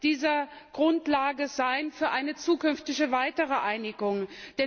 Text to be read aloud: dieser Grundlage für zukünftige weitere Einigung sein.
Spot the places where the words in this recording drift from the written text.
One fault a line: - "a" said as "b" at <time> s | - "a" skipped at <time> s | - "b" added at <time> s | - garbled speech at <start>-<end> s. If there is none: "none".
- "eine" added at 2.1 s